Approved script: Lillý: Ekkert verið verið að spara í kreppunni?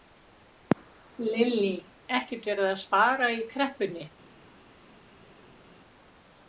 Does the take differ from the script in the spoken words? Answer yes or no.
yes